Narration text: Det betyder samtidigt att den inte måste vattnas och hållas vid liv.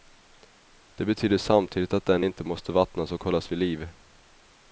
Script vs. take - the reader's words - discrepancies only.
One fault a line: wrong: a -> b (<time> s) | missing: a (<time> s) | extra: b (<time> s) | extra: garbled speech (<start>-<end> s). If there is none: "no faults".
no faults